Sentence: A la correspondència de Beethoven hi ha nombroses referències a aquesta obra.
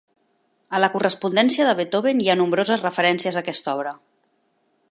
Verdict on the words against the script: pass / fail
pass